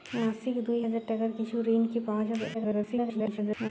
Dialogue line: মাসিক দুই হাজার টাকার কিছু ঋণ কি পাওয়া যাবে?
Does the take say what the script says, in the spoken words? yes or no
no